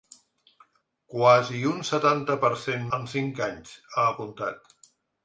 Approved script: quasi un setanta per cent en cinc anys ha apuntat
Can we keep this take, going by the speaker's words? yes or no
yes